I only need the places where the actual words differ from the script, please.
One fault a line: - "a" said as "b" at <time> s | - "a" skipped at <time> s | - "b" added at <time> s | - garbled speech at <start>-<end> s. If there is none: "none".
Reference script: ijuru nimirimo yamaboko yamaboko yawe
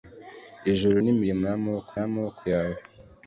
none